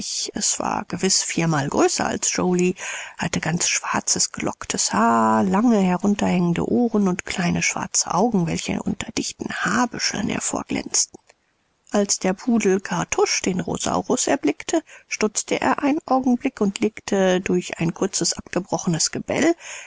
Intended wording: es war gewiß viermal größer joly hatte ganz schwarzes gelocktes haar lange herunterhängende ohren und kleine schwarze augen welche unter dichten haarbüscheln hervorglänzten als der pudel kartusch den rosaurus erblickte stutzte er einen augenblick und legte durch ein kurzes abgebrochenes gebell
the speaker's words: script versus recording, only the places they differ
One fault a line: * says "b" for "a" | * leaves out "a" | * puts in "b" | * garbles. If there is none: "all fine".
* puts in "als"